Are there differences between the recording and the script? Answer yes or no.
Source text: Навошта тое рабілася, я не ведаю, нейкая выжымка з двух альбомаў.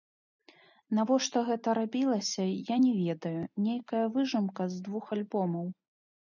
yes